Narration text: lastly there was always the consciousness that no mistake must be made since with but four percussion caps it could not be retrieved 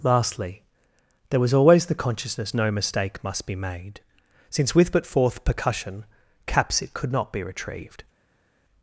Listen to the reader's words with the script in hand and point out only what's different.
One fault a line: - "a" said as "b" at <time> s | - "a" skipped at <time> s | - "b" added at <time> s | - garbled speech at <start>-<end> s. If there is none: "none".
- "that" skipped at 2.5 s
- "four" said as "fourth" at 5.0 s